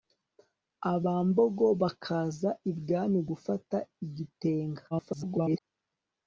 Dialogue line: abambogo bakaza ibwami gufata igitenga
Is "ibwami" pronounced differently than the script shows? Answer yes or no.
no